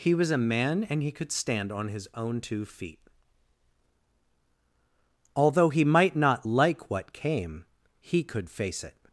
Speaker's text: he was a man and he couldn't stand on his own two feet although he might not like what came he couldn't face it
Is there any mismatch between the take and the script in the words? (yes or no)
yes